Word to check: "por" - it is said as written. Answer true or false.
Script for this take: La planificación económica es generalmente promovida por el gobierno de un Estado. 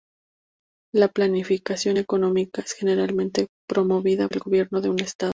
false